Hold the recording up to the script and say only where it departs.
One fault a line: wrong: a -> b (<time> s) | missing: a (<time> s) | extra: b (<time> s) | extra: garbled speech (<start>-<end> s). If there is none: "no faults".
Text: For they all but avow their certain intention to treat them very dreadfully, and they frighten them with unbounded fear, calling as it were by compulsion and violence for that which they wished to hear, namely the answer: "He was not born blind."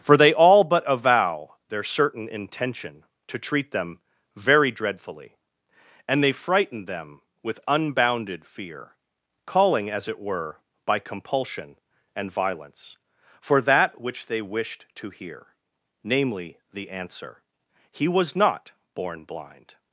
no faults